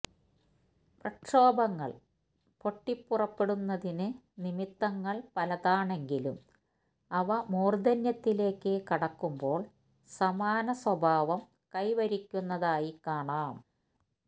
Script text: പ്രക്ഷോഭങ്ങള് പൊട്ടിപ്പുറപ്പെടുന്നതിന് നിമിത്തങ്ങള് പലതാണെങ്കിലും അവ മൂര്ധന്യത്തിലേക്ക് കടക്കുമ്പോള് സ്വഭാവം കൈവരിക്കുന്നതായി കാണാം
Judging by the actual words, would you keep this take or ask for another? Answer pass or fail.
fail